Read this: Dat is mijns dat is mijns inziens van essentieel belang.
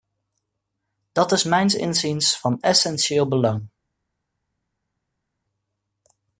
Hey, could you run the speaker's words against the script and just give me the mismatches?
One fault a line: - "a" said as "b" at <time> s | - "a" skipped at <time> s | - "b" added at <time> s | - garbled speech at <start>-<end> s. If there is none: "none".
- "dat is mijns" skipped at 1.8 s